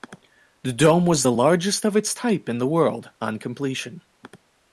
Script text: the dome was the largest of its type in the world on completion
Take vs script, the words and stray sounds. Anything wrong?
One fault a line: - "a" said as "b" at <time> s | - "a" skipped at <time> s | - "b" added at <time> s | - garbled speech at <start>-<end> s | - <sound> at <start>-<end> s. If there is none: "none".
none